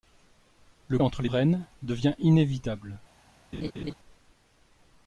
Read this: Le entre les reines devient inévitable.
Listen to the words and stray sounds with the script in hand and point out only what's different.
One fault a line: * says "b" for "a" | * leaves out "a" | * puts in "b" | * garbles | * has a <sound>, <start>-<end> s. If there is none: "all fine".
* has a laugh, 3.5-3.9 s